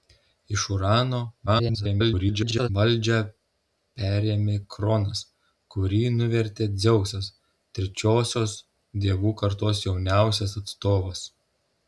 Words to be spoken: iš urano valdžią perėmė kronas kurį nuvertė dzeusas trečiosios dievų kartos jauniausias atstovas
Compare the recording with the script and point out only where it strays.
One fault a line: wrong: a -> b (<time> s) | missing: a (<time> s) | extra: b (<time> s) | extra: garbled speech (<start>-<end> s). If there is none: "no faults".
extra: garbled speech (1.5-2.7 s)